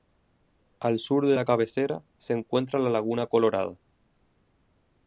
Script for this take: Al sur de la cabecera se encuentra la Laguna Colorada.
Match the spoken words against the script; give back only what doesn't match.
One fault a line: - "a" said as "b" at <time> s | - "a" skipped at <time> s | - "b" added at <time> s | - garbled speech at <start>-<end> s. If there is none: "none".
none